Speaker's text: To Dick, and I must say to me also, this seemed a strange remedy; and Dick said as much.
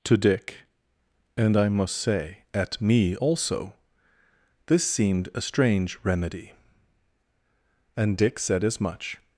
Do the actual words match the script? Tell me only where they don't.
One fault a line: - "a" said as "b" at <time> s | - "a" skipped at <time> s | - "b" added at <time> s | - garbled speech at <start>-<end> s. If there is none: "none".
- "to" said as "at" at 2.5 s